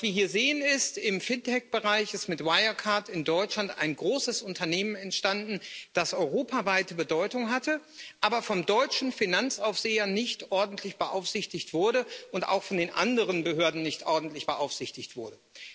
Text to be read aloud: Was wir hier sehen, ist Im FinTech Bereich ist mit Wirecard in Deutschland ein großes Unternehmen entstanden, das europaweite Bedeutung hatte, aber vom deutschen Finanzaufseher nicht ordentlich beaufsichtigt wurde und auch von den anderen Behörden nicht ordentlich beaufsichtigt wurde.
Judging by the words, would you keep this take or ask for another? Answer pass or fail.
pass